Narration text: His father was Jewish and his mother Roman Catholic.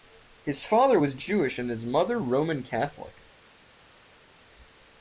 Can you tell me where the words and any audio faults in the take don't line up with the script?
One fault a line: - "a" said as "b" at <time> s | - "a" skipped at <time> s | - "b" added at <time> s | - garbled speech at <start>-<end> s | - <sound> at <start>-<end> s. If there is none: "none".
none